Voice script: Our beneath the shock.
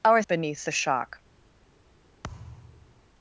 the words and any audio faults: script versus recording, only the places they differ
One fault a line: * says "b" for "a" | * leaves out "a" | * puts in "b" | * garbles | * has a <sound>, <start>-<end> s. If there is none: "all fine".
* has a thud, 2.2-3.1 s